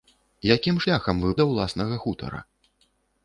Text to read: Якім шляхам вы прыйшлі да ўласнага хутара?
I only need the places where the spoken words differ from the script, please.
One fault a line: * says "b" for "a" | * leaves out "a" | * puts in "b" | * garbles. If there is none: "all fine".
* leaves out "прыйшлі"